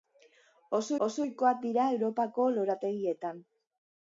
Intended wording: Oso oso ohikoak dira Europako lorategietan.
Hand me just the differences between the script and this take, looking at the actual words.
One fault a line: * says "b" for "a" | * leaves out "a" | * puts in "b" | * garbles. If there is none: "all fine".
all fine